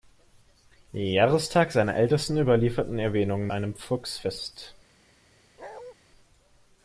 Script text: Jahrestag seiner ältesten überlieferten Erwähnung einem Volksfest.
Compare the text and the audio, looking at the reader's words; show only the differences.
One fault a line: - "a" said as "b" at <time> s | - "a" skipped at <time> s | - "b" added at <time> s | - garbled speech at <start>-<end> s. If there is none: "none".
none